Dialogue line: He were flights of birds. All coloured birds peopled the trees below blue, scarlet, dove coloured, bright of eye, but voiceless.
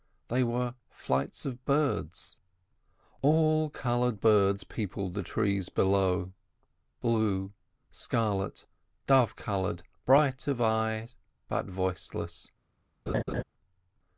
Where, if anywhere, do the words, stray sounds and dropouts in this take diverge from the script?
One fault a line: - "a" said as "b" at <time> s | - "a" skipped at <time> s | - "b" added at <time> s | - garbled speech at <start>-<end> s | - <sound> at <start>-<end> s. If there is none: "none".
- "He" said as "They" at 0.3 s
- laugh at 13.1-13.4 s